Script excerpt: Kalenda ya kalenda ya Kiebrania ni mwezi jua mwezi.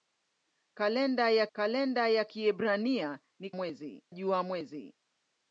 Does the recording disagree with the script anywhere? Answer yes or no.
no